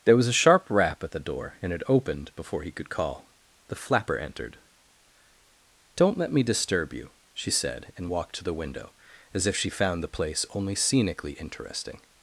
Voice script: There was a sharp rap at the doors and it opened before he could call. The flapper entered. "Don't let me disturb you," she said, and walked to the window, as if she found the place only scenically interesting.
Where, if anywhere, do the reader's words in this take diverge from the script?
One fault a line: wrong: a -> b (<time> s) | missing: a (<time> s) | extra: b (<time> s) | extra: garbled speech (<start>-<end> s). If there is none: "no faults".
wrong: doors -> door (1.2 s)